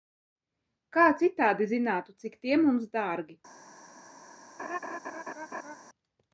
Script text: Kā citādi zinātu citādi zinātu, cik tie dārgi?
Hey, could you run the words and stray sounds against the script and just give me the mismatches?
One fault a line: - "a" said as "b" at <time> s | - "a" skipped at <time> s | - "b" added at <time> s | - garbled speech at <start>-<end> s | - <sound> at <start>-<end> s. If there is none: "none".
- "citādi zinātu" skipped at 2.1 s
- "mums" added at 2.7 s
- laugh at 4.6-5.8 s